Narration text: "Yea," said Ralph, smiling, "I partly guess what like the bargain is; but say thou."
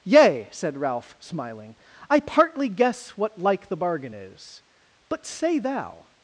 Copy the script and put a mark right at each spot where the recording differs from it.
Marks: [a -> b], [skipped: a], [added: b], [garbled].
"Yea," said Ralph, smiling, "I partly guess what like the bargain is; but say thou."